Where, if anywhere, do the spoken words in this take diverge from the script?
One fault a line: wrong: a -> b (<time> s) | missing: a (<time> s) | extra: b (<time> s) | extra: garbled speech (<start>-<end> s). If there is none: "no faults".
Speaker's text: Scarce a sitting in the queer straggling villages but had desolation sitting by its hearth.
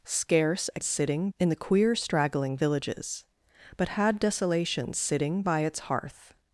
no faults